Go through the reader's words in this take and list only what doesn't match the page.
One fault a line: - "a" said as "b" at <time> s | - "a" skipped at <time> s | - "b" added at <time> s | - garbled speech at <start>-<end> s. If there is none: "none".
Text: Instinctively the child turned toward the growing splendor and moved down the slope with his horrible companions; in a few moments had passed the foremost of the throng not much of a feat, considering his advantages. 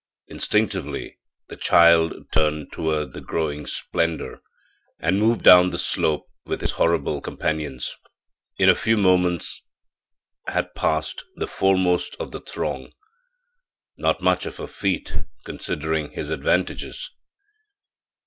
none